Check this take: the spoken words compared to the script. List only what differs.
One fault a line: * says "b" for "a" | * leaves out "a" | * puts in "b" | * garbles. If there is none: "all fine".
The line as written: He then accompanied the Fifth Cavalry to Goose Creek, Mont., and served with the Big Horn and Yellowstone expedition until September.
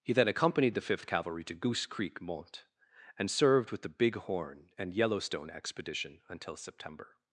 all fine